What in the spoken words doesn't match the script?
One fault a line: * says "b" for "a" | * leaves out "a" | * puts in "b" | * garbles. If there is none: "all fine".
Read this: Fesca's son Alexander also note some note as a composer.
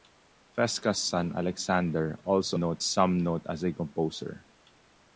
all fine